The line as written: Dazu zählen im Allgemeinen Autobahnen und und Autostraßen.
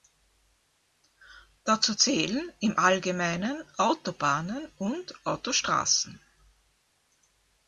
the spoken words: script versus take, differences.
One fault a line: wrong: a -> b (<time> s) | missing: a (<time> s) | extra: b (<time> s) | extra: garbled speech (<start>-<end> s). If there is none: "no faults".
missing: und (5.3 s)